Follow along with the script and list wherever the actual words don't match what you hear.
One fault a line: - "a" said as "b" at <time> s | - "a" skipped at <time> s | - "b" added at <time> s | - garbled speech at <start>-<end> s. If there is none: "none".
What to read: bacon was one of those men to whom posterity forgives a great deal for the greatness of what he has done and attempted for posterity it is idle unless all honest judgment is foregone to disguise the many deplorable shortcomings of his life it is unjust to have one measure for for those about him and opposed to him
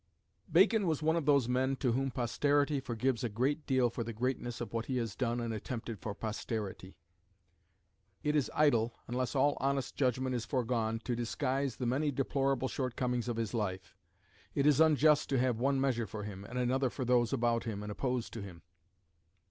- "him and another" added at 16.2 s